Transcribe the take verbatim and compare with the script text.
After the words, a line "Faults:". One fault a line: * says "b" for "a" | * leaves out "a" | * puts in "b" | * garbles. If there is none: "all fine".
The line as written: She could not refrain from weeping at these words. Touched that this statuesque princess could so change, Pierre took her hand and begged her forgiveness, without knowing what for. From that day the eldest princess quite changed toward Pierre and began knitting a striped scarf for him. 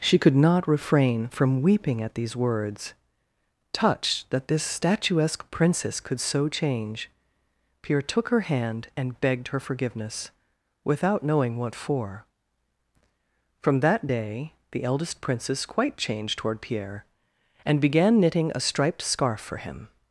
She could not refrain from weeping at these words. Touched that this statuesque princess could so change, Pierre took her hand and begged her forgiveness, without knowing what for. From that day the eldest princess quite changed toward Pierre and began knitting a striped scarf for him.
Faults:
all fine